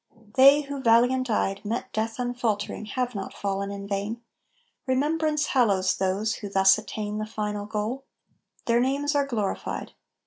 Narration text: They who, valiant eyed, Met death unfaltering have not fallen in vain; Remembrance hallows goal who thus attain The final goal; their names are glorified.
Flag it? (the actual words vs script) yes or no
yes